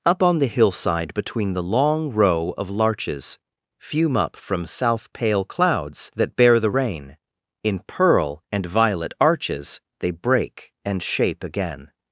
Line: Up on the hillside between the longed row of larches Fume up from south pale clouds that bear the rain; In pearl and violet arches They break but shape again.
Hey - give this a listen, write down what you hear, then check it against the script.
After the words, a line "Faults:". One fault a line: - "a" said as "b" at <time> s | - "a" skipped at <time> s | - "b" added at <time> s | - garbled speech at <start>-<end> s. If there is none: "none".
Up on the hillside between the long row of larches Fume up from south pale clouds that bear the rain; In pearl and violet arches They break and shape again.
Faults:
- "longed" said as "long" at 1.6 s
- "but" said as "and" at 10.9 s